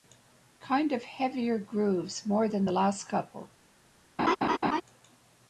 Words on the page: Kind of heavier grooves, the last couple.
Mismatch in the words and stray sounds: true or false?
true